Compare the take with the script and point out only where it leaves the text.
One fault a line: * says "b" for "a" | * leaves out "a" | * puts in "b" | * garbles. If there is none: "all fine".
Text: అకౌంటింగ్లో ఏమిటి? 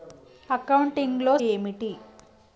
all fine